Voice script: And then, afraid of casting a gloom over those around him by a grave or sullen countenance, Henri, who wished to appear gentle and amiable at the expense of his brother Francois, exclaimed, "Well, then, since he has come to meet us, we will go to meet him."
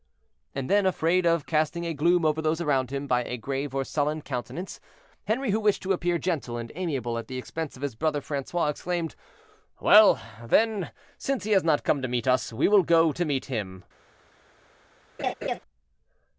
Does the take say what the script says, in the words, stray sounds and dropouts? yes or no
no